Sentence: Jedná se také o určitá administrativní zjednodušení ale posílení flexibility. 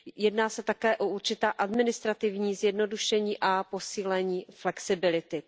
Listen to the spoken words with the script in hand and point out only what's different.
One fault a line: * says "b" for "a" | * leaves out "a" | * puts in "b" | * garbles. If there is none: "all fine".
* says "a" for "ale"